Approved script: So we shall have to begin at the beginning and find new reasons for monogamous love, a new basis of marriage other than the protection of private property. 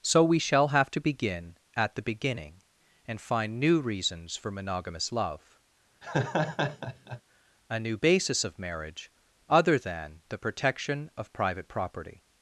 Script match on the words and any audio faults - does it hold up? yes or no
no